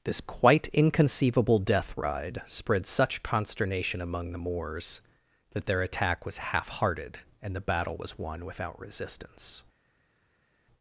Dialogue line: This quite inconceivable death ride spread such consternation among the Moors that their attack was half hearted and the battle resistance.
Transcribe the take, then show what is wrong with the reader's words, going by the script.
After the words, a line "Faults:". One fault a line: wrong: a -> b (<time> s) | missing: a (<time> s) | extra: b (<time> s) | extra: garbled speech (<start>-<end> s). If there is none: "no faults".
This quite inconceivable death ride spread such consternation among the Moors that their attack was half hearted and the battle was won without resistance.
Faults:
extra: was won without (8.0 s)